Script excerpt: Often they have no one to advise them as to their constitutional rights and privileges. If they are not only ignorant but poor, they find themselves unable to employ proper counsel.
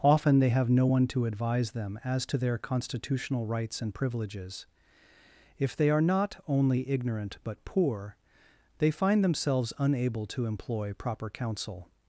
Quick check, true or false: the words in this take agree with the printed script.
true